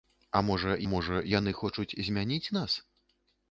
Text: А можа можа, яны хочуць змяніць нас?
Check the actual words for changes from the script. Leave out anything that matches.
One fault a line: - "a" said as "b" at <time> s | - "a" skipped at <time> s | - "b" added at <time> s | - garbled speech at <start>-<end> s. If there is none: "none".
none